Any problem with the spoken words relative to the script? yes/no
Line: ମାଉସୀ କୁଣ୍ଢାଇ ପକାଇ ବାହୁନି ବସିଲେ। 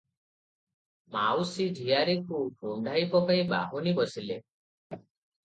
yes